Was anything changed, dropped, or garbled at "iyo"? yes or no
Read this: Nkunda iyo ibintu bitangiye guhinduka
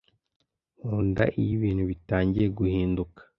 no